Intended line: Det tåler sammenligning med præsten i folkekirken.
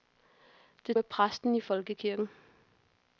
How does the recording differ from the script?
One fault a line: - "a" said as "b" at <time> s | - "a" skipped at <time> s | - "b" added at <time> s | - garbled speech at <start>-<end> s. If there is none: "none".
- "tåler sammenligning" skipped at 1.0 s